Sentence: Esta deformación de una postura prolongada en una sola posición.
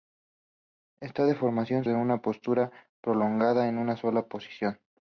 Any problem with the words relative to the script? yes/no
no